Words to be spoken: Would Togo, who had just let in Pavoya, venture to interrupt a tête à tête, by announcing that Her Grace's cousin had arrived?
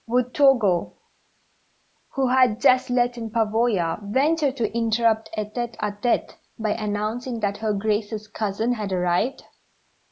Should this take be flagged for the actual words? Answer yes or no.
no